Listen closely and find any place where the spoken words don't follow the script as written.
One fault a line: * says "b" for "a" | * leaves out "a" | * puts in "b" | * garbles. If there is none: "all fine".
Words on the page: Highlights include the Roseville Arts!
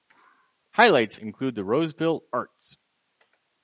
all fine